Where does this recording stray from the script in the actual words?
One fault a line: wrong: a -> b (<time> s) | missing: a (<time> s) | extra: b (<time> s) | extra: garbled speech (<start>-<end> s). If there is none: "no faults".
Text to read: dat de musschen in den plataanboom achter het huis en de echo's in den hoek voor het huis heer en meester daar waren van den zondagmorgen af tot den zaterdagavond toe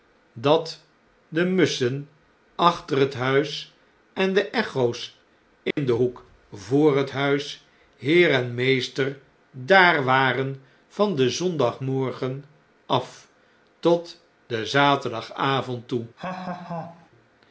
missing: in den plataanboom (2.1 s)